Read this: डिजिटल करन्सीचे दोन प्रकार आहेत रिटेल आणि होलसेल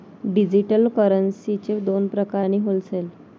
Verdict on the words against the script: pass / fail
fail